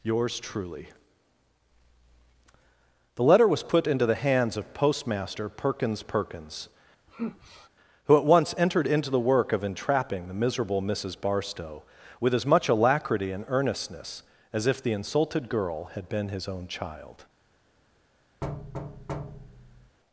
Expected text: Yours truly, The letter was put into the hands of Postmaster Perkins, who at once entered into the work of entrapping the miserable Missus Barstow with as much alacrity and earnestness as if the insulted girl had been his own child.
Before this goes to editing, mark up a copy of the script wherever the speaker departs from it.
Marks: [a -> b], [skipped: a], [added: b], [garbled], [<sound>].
Yours truly, The letter was put into the hands of Postmaster Perkins, [added: Perkins] [sigh] who at once entered into the work of entrapping the miserable Missus Barstow with as much alacrity and earnestness as if the insulted girl had been his own child. [thud]